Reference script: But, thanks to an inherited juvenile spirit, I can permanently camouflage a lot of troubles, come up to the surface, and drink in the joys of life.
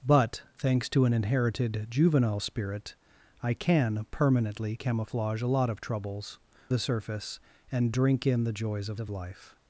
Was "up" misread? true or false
true